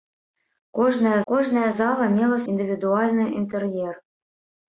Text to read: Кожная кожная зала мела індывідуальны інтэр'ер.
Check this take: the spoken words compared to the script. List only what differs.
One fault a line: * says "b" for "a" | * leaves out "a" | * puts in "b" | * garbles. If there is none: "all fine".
all fine